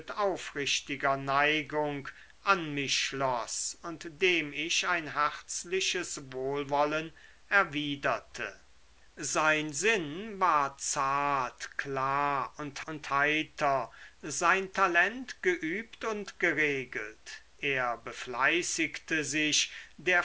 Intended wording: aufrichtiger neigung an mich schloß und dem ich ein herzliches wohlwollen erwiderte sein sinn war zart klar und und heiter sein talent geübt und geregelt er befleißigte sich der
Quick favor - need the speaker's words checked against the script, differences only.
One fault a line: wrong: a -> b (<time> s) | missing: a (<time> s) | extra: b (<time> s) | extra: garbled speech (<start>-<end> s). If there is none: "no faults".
no faults